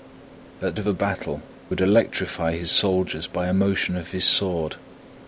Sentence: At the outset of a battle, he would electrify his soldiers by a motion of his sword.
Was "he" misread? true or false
true